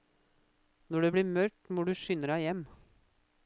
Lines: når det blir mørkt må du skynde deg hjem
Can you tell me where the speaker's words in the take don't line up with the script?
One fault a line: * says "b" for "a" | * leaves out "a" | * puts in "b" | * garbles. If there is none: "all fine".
all fine